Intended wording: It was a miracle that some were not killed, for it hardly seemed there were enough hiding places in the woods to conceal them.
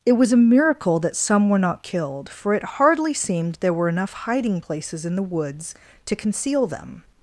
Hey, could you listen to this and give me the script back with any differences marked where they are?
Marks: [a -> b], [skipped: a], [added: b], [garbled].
It was a miracle that some were not killed, for it hardly seemed there were enough hiding places in the woods to conceal them.